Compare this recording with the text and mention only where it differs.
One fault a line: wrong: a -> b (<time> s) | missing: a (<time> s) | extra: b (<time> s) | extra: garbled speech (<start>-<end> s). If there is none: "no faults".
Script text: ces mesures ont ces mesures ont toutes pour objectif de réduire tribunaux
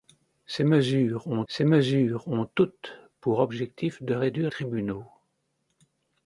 no faults